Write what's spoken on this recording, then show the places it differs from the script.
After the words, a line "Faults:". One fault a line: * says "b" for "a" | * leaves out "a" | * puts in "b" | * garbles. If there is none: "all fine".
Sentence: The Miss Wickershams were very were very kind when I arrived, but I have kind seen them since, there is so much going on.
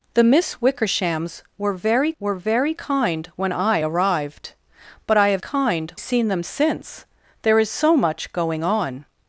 The Miss Wickershams were very were very kind when I arrived, but I have kind seen them since, there is so much going on.
Faults:
all fine